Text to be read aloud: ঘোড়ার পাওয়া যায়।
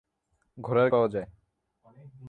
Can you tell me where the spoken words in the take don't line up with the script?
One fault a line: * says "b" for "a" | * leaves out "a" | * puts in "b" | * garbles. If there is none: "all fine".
all fine